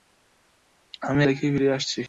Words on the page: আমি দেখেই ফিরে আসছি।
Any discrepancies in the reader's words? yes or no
no